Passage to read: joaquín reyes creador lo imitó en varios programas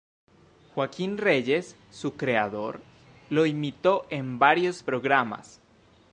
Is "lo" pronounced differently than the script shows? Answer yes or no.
no